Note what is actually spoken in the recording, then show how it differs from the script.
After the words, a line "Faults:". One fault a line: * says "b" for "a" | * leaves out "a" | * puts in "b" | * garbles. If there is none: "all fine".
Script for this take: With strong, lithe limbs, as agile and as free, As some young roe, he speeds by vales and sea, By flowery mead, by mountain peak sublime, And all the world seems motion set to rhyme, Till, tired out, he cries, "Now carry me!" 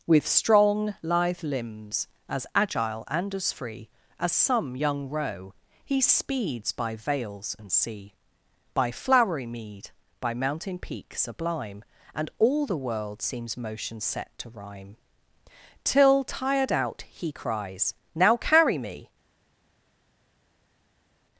With strong, lithe limbs, as agile and as free, As some young roe, he speeds by vales and sea, By flowery mead, by mountain peak sublime, And all the world seems motion set to rhyme, Till, tired out, he cries, "Now carry me!"
Faults:
all fine